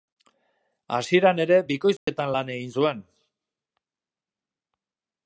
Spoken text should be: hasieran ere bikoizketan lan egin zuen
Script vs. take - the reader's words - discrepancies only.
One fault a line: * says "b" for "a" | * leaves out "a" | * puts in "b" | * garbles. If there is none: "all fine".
all fine